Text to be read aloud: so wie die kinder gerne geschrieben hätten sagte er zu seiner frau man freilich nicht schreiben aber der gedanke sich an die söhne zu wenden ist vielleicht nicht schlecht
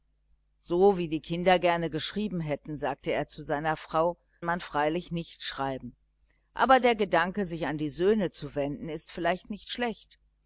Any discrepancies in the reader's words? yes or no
no